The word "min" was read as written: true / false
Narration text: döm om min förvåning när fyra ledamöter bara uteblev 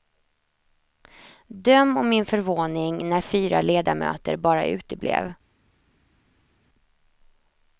true